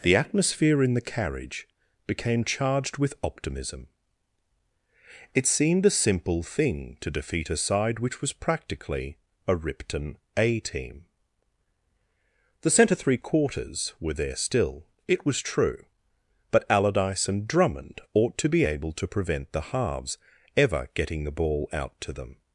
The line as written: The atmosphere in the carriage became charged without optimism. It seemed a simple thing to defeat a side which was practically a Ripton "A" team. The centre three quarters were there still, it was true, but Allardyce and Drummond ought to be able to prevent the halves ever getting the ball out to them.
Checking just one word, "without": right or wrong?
wrong